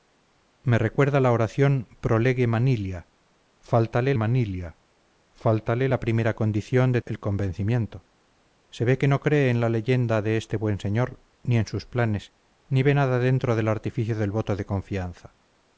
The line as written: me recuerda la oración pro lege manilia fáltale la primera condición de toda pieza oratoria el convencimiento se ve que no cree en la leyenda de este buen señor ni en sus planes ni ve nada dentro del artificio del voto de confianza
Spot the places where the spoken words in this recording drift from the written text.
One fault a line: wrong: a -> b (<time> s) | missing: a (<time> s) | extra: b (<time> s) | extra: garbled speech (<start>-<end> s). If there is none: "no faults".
extra: manilia fáltale (4.1 s)
missing: toda pieza oratoria (7.0 s)